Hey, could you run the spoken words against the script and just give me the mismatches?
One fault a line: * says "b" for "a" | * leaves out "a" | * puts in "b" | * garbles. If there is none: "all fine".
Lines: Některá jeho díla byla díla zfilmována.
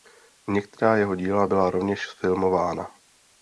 * says "rovněž" for "díla"